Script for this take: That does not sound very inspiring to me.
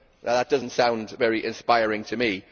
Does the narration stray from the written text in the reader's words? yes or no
no